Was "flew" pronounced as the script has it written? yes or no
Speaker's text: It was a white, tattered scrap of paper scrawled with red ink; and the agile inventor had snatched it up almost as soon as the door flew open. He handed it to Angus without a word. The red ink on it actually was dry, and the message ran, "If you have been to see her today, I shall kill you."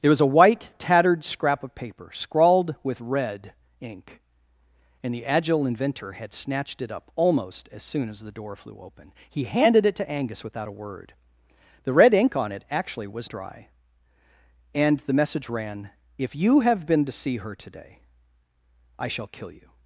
yes